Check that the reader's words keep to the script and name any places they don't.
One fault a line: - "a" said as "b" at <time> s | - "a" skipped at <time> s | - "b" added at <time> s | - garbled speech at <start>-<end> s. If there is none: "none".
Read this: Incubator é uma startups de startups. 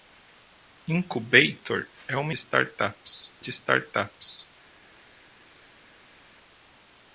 none